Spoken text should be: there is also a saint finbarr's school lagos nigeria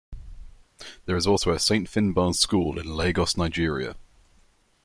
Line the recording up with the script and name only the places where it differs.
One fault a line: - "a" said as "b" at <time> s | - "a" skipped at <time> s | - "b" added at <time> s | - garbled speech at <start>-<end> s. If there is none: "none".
- "in" added at 2.8 s